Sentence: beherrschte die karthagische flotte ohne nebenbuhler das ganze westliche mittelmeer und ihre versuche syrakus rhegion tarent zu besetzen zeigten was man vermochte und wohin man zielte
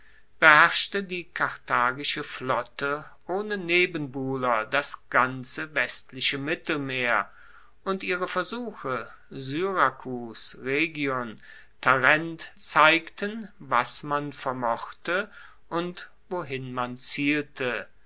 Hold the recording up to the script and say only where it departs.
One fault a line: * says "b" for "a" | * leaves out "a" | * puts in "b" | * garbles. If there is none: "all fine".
* leaves out "zu besetzen"